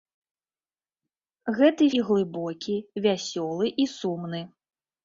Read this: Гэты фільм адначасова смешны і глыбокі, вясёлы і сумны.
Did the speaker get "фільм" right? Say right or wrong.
wrong